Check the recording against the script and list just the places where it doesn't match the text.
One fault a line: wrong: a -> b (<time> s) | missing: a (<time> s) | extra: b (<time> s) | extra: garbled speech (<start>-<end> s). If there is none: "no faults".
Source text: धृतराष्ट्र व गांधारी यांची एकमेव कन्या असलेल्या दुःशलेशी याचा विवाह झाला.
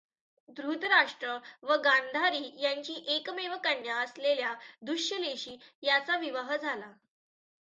no faults